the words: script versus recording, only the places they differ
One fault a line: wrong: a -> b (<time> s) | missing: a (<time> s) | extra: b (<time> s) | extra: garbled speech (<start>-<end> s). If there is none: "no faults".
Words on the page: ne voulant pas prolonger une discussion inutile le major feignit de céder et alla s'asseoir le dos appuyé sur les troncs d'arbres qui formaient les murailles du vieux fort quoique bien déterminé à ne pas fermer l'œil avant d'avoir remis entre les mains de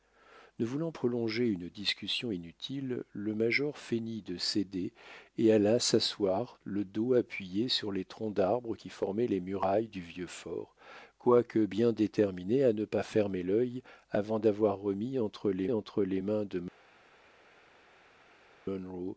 missing: pas (0.9 s)
extra: entre les (15.7 s)